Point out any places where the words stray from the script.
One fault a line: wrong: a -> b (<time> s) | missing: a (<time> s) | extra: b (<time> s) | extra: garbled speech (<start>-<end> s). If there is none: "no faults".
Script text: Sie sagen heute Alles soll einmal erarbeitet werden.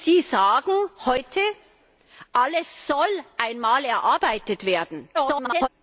extra: garbled speech (5.1-5.7 s)